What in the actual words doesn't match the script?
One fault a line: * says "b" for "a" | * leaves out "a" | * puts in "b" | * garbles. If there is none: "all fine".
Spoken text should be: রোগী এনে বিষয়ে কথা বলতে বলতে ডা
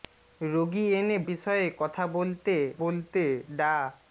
all fine